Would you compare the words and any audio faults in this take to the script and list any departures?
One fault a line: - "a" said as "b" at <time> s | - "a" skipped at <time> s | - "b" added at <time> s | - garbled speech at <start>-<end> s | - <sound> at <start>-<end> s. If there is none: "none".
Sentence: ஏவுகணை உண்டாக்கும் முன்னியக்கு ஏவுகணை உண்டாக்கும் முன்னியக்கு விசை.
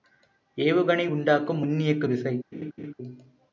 - "ஏவுகணை உண்டாக்கும் முன்னியக்கு" skipped at 2.1 s
- laugh at 2.5-2.9 s